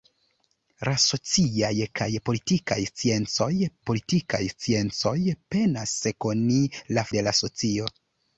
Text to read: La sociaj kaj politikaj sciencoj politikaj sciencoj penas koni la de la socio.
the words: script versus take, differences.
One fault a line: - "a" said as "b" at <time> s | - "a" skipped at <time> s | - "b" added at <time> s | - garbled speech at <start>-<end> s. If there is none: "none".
none